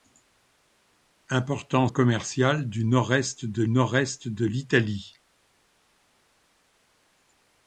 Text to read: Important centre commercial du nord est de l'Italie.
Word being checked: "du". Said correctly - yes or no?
yes